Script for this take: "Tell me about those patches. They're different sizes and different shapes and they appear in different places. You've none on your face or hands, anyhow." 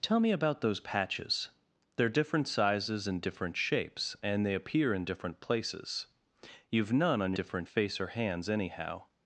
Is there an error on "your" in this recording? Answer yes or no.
yes